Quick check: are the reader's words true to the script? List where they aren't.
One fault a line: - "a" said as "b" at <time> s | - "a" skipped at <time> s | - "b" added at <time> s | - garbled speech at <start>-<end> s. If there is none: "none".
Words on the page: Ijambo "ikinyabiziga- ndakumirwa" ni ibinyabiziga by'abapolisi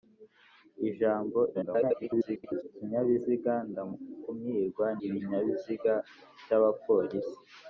- garbled speech at 1.5-2.6 s
- "ni" skipped at 4.9 s